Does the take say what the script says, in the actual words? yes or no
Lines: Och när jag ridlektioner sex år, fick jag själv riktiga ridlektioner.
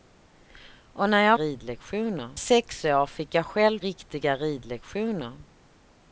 yes